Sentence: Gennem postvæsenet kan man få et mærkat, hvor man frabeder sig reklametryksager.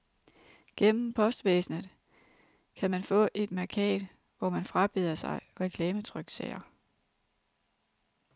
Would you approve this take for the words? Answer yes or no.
yes